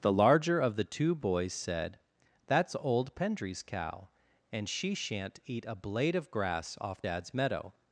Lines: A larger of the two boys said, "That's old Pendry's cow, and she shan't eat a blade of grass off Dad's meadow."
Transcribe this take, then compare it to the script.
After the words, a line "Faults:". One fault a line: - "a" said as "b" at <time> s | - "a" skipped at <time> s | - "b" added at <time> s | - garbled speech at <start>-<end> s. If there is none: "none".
The larger of the two boys said, "That's old Pendry's cow, and she shan't eat a blade of grass off Dad's meadow."
Faults:
- "A" said as "The" at 0.0 s